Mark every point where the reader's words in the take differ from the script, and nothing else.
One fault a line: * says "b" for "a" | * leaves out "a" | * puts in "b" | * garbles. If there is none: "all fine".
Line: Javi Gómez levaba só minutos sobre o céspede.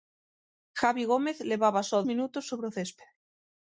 all fine